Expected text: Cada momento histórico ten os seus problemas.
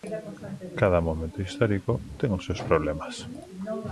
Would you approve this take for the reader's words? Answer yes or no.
yes